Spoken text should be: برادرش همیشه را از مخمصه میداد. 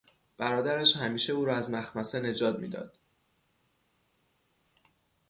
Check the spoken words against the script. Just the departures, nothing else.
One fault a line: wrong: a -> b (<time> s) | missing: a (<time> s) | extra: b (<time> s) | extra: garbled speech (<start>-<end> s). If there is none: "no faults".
extra: او (1.3 s)
extra: نجات (2.2 s)